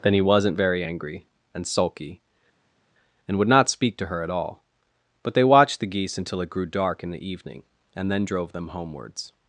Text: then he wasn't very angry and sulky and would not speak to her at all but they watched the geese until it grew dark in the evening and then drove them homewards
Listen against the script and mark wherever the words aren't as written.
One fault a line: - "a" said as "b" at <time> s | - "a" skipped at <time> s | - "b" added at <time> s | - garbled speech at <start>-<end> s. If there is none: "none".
none